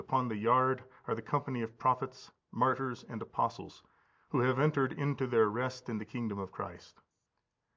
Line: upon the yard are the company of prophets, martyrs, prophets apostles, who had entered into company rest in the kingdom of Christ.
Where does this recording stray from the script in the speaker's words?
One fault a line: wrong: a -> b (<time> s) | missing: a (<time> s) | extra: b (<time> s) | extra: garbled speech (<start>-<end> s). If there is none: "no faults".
wrong: prophets -> and (3.1 s)
wrong: had -> have (4.4 s)
wrong: company -> their (5.3 s)